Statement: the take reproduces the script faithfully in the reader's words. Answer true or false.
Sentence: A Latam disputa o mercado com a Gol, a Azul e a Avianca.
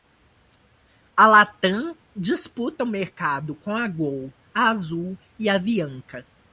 true